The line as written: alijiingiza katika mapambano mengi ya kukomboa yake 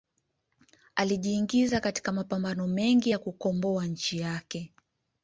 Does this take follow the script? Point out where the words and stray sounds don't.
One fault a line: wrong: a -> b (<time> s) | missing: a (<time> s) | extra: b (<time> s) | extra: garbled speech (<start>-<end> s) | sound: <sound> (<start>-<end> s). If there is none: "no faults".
extra: nchi (3.9 s)